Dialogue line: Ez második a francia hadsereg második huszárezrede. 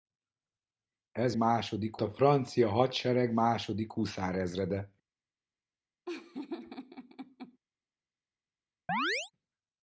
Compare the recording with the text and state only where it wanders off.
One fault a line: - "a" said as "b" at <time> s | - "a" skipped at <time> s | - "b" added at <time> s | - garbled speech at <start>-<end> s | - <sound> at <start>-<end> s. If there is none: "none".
- laugh at 6.1-7.6 s
- chirp at 8.9-9.3 s